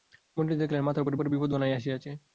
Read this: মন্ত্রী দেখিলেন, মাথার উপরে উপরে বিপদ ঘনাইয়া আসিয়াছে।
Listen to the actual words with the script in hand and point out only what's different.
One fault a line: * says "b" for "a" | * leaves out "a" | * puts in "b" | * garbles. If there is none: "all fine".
all fine